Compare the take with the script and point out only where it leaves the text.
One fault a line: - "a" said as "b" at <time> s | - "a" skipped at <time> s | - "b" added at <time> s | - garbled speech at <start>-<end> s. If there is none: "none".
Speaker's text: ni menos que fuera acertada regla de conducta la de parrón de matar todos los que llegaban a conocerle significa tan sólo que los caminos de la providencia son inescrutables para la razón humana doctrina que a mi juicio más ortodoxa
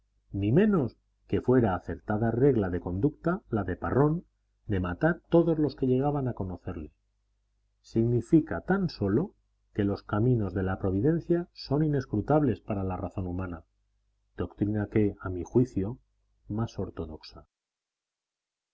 none